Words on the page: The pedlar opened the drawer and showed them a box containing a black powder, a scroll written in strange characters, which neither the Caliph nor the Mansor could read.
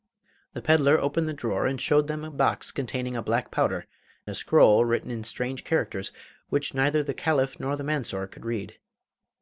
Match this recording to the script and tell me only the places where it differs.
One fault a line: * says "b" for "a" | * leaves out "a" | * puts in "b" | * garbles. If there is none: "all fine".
all fine